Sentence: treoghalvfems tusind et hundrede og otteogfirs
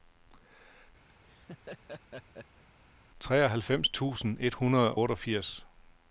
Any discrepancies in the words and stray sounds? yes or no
yes